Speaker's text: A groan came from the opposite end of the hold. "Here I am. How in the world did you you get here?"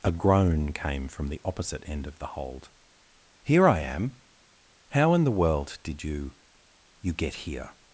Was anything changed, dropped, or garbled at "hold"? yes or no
no